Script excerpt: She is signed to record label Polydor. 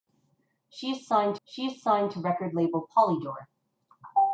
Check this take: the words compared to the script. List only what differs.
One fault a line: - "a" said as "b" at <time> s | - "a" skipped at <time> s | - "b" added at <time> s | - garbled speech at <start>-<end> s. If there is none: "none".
- "she is signed" added at 1.4 s